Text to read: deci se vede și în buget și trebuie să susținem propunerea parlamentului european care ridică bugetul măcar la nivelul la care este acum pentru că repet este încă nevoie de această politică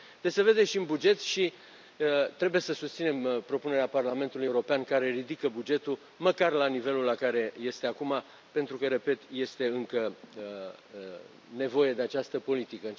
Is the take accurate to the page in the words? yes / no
yes